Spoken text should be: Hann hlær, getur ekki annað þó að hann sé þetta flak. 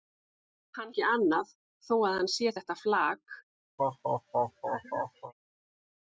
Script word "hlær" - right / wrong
wrong